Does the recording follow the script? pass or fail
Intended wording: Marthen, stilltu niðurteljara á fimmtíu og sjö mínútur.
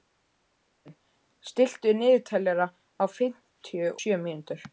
fail